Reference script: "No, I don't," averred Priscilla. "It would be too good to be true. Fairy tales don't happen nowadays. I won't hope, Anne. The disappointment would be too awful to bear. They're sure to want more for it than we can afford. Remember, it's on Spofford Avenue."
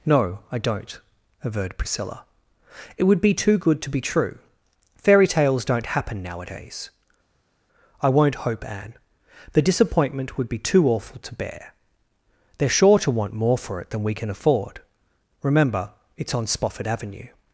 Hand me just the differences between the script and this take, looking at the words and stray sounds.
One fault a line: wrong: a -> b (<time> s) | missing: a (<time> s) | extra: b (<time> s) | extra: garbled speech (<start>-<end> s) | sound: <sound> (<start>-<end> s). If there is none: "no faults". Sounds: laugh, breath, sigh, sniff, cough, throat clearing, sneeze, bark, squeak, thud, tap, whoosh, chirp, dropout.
no faults